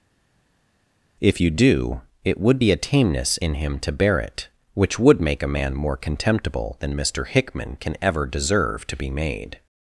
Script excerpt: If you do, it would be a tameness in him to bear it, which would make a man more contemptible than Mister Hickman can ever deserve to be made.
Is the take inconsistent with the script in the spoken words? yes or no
no